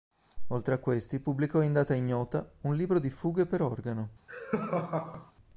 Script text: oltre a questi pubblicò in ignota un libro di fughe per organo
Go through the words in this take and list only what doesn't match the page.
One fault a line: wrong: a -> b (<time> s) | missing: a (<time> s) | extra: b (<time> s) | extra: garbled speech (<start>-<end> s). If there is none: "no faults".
extra: data (1.7 s)